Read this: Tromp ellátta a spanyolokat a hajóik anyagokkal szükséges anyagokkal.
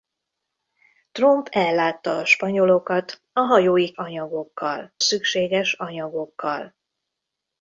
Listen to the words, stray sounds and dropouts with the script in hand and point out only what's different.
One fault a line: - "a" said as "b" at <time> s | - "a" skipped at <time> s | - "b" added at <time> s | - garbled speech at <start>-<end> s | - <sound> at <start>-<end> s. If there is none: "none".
none